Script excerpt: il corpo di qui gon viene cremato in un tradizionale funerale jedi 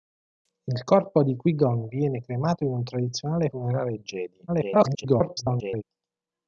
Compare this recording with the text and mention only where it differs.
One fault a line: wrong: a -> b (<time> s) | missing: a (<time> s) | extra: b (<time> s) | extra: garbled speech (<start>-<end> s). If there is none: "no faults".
extra: garbled speech (4.5-5.8 s)